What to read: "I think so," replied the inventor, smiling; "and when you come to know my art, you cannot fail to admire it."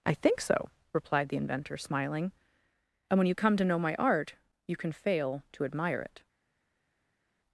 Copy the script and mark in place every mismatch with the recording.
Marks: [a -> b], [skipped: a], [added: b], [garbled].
"I think so," replied the inventor, smiling; "and when you come to know my art, you [cannot -> can] fail to admire it."